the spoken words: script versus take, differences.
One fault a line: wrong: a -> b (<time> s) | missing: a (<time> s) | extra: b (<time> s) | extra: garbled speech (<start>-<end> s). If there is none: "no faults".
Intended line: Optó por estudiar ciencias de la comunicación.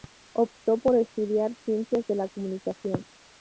no faults